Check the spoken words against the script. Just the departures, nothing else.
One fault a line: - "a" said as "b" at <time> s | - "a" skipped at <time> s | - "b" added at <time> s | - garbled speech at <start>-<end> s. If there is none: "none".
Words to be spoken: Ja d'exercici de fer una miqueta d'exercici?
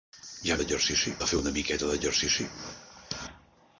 none